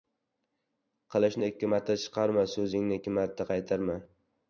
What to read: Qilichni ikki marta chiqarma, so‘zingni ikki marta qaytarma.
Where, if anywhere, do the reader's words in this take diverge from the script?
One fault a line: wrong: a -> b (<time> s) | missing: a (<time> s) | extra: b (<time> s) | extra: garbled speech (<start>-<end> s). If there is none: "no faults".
no faults